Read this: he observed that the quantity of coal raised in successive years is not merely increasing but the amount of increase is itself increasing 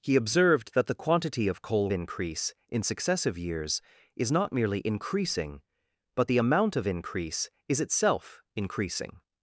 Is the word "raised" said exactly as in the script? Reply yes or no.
no